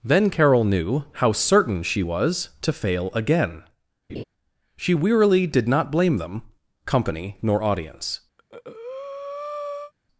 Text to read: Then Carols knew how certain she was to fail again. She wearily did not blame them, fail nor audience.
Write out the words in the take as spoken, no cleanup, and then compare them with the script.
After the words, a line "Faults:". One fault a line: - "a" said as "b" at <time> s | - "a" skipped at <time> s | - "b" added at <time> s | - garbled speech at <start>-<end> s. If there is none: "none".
Then Carol knew how certain she was to fail again. She wearily did not blame them, company nor audience.
Faults:
- "Carols" said as "Carol" at 0.3 s
- "fail" said as "company" at 6.9 s